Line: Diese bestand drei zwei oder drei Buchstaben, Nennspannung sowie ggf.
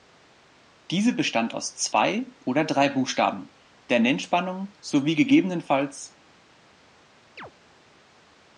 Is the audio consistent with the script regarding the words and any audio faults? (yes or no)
no